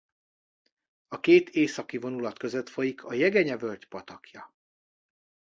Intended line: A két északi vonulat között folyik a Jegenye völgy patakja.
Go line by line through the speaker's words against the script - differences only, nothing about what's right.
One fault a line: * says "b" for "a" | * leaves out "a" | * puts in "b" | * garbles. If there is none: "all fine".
all fine